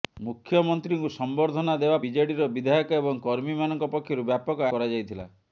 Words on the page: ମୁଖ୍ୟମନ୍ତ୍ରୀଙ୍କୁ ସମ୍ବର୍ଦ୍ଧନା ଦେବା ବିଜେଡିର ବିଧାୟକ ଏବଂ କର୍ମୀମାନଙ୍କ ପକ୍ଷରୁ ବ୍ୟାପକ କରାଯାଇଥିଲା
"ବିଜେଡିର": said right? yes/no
yes